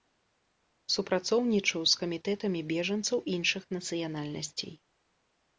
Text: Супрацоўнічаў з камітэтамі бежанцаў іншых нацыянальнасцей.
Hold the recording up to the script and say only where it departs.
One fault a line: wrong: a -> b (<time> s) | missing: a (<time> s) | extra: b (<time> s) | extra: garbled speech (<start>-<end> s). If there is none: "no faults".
no faults